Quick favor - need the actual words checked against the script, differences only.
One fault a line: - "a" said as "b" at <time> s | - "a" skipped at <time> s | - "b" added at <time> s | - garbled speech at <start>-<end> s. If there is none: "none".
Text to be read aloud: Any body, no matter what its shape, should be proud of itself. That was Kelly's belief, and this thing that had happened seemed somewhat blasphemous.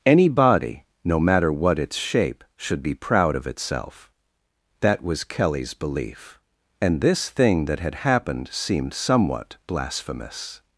none